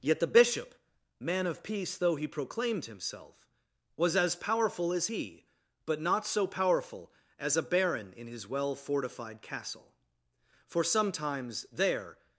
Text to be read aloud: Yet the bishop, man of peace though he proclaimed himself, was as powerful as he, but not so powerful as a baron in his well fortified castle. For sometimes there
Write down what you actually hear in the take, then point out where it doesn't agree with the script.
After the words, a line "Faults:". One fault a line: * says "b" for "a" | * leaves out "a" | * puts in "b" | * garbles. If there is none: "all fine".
Yet the bishop, man of peace though he proclaimed himself, was as powerful as he, but not so powerful as a baron in his well fortified castle. For sometimes there
Faults:
all fine